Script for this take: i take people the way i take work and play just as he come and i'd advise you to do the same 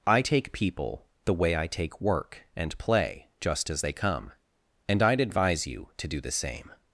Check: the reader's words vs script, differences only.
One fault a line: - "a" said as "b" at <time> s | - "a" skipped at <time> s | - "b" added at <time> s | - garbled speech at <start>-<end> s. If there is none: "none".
- "he" said as "they" at 3.8 s